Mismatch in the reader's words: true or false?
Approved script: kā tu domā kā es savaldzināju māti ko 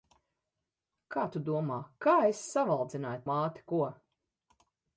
false